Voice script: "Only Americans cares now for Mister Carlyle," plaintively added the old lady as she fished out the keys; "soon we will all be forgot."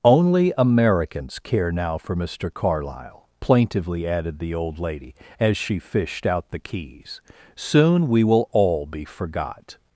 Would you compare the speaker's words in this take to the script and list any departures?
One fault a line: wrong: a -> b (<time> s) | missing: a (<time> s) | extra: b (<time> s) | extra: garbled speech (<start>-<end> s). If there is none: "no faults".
wrong: cares -> care (1.4 s)